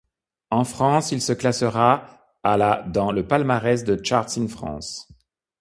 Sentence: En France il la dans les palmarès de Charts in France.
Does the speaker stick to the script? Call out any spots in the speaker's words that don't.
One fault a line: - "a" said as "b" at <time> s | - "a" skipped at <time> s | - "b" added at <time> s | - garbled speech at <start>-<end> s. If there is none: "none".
- "se classera à" added at 1.2 s
- "les" said as "le" at 3.1 s